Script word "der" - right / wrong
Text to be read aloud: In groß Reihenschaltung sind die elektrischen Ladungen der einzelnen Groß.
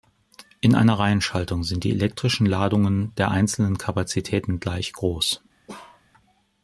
right